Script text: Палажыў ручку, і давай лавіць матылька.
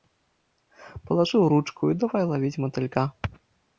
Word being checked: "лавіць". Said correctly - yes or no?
yes